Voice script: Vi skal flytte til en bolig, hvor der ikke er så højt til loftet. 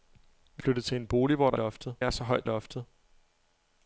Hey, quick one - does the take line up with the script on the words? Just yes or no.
no